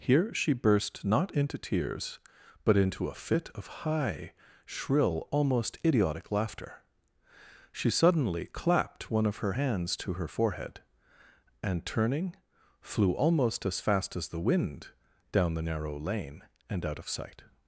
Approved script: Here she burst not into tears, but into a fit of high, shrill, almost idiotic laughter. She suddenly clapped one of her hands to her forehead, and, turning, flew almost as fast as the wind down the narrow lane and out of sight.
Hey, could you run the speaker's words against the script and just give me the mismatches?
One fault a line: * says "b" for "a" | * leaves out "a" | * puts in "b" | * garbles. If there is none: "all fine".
all fine